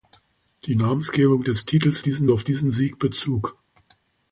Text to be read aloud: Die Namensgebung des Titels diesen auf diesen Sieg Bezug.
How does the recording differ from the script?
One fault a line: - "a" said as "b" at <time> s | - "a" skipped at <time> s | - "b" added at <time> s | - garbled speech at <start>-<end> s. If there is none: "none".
none